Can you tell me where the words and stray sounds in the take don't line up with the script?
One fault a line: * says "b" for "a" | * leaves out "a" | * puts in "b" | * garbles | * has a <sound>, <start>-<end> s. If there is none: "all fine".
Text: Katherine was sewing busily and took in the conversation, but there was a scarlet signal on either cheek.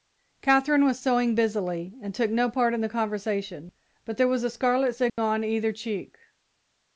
* puts in "no part"
* has a dropout, 5.1-5.2 s